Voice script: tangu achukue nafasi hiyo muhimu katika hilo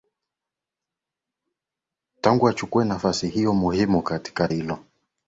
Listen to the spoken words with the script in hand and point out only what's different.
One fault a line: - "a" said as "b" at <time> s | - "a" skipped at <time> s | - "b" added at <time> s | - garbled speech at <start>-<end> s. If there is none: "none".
none